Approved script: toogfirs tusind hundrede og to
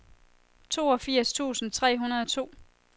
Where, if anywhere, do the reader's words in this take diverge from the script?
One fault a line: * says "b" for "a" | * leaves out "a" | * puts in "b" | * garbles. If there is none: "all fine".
* puts in "tre"